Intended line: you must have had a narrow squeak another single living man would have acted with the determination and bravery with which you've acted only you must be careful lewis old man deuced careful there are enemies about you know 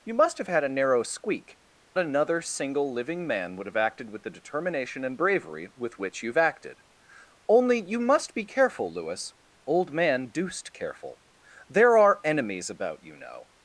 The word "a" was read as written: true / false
true